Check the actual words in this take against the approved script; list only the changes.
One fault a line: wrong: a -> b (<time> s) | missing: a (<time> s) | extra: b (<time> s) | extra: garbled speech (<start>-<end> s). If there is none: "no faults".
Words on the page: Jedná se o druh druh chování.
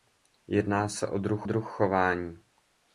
no faults